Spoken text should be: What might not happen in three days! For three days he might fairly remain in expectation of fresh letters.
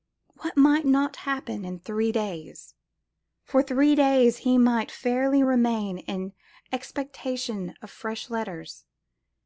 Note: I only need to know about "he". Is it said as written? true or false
true